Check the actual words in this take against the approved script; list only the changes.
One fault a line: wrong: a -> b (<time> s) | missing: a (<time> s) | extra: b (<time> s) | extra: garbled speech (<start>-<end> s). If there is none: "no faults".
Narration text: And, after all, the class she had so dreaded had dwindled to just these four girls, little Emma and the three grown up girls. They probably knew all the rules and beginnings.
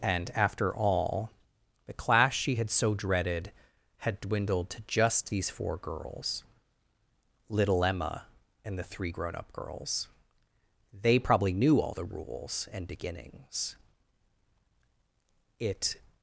extra: It (15.6 s)